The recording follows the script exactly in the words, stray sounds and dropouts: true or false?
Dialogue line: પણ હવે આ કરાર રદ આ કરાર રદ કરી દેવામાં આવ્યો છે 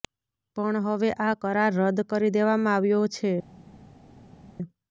false